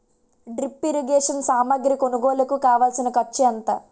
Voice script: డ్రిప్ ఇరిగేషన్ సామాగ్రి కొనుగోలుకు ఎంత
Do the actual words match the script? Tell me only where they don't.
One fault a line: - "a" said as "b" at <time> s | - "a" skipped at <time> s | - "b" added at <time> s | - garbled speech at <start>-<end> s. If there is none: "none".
- "కావాల్సిన ఖర్చు" added at 2.6 s